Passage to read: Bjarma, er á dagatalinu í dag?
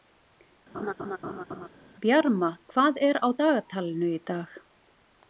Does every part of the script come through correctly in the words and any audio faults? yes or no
no